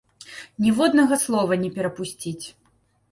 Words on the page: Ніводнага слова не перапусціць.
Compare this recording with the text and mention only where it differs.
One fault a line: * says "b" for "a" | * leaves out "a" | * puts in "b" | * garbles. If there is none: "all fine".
all fine